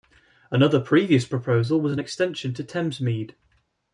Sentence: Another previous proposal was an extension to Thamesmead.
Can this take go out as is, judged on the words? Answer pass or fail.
pass